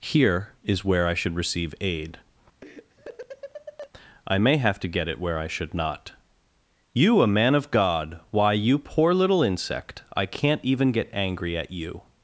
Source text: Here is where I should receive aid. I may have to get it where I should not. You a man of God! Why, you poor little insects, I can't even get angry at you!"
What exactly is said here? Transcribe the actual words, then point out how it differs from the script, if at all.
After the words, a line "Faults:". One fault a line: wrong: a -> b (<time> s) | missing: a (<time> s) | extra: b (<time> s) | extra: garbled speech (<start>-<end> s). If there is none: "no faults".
Here is where I should receive aid. I may have to get it where I should not. You a man of God! Why, you poor little insect, I can't even get angry at you!"
Faults:
wrong: insects -> insect (9.4 s)